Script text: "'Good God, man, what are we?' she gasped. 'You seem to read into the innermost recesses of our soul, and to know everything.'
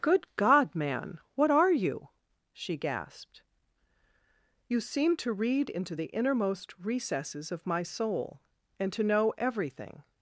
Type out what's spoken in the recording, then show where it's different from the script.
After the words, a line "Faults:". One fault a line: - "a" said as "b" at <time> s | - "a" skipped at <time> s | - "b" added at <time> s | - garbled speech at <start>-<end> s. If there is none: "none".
"'Good God, man, what are you?' she gasped. 'You seem to read into the innermost recesses of my soul, and to know everything.'
Faults:
- "we" said as "you" at 1.7 s
- "our" said as "my" at 7.7 s